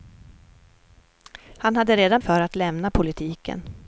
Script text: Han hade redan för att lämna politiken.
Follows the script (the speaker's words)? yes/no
yes